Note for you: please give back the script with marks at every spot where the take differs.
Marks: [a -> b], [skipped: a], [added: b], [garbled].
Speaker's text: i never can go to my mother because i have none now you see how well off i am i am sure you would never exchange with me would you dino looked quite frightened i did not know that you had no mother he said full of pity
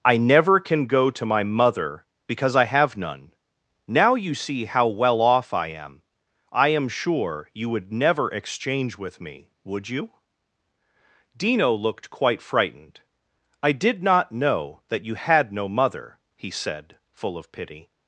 i never can go to my mother because i have none now you see how well off i am i am sure you would never exchange with me would you dino looked quite frightened i did not know that you had no mother he said full of pity